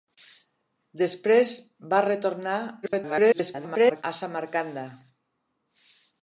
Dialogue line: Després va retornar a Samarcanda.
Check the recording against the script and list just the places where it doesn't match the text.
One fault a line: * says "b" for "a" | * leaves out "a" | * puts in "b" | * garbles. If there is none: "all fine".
* garbles